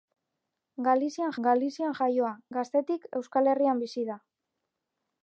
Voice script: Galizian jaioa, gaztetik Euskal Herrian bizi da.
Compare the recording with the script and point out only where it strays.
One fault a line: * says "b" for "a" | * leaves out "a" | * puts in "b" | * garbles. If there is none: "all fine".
* puts in "galizian"